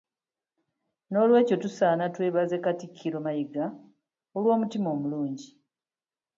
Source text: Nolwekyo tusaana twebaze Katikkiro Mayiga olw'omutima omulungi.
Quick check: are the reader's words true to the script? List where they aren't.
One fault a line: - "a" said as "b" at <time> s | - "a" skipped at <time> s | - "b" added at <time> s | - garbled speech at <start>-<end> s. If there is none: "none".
none